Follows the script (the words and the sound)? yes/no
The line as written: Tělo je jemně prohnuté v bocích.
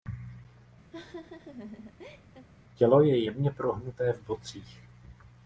no